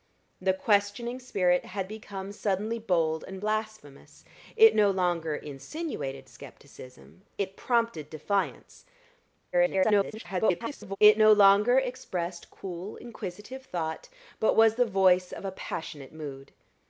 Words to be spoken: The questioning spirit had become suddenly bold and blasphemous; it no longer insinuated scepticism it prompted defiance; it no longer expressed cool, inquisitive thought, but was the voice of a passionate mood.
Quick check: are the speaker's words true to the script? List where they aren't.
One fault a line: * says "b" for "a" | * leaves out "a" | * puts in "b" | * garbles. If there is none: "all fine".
* garbles